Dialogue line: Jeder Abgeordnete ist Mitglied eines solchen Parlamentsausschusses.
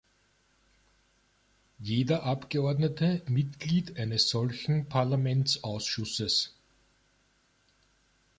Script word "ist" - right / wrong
wrong